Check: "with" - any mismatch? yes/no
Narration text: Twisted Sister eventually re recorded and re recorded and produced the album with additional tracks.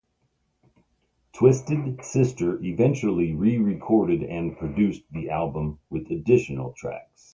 no